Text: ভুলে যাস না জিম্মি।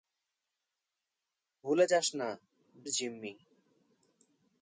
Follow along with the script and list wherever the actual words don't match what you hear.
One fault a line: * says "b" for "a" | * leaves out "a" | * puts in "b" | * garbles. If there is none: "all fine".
all fine